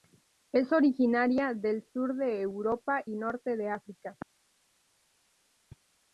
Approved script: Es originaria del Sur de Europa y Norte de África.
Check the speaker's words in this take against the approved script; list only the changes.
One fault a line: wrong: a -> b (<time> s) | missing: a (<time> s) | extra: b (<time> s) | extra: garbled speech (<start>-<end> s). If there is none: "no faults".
no faults